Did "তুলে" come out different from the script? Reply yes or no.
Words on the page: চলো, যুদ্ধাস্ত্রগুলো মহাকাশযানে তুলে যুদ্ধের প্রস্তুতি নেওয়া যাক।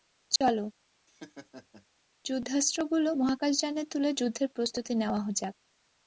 no